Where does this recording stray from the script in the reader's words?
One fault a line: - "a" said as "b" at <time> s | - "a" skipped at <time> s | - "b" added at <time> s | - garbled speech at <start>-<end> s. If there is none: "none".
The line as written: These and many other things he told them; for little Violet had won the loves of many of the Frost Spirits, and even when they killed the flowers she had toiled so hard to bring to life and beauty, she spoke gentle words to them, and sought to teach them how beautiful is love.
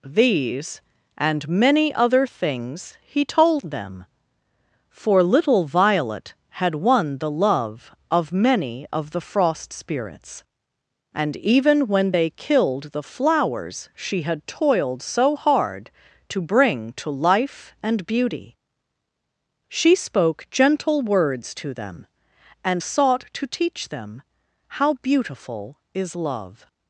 - "loves" said as "love" at 7.3 s